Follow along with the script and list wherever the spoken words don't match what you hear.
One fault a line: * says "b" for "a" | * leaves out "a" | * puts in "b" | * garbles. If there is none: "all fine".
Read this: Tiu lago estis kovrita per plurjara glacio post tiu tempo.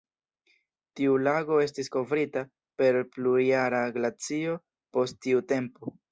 all fine